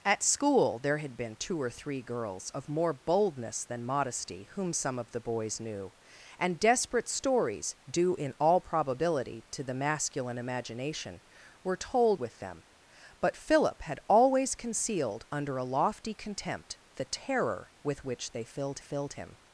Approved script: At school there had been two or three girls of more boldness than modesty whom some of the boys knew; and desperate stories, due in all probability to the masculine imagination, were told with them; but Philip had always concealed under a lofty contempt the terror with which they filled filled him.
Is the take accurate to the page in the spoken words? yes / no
yes